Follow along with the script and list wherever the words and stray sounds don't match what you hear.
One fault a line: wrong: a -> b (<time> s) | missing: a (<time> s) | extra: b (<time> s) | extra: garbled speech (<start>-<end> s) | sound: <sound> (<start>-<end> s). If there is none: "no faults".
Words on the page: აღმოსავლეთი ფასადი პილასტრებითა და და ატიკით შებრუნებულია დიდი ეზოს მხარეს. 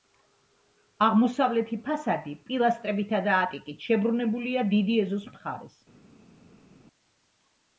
missing: და (3.4 s)